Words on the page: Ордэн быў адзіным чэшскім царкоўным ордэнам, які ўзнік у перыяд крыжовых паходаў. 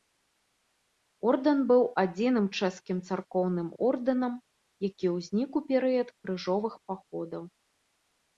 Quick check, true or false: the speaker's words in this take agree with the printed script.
true